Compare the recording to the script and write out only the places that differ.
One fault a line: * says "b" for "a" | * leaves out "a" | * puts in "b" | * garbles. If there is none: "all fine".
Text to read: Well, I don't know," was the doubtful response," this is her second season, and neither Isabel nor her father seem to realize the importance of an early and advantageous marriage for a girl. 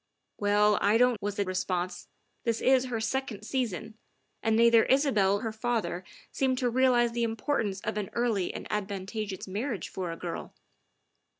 * leaves out "know"
* leaves out "doubtful"
* leaves out "nor"